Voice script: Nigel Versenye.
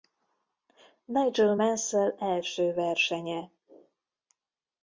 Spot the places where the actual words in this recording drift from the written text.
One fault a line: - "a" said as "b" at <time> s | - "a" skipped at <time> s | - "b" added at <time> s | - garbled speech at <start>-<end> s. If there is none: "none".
- "Mansell első" added at 1.5 s